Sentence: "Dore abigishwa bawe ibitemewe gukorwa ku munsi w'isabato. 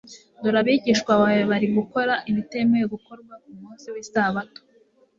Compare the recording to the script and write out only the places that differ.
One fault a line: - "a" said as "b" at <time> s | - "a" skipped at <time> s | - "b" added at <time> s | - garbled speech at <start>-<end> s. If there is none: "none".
- "bari gukora" added at 1.5 s